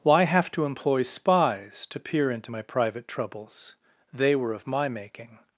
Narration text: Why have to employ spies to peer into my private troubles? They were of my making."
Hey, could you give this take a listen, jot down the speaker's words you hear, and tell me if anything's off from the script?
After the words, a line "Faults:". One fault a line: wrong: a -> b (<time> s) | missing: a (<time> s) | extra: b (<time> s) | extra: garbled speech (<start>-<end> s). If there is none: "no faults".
Why have to employ spies to peer into my private troubles? They were of my making."
Faults:
no faults